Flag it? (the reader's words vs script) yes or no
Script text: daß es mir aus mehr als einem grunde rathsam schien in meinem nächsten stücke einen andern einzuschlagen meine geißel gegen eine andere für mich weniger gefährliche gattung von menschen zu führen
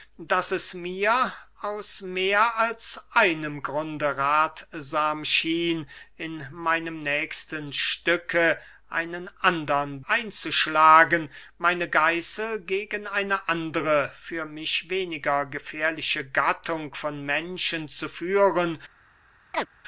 no